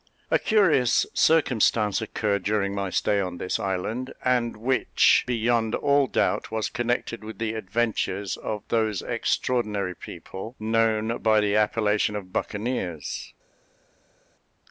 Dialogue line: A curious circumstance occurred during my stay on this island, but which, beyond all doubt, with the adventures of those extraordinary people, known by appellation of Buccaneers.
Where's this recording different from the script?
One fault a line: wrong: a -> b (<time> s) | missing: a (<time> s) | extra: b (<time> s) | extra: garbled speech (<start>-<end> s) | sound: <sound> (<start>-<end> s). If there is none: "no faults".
wrong: but -> and (4.2 s)
extra: was connected (6.5 s)
extra: the (11.4 s)